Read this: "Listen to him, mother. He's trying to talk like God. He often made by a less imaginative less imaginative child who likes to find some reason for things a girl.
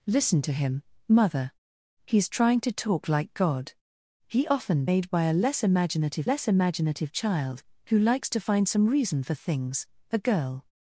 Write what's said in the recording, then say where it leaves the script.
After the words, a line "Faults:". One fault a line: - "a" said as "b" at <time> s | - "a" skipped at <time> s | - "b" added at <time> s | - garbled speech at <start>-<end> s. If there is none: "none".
"Listen to him, mother. He's trying to talk like God. He often made by a less imaginative less imaginative child who likes to find some reason for things a girl.
Faults:
none